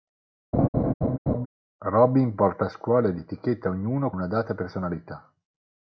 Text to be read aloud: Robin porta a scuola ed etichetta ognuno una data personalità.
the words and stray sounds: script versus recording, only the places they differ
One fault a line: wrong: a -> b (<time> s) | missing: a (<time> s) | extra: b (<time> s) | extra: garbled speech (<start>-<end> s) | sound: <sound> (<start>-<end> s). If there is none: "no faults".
sound: laugh (0.5-1.5 s)